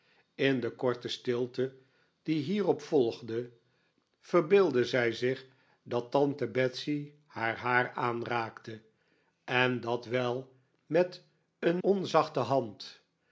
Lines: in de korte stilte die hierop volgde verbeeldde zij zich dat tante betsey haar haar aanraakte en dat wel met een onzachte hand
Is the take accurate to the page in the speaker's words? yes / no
yes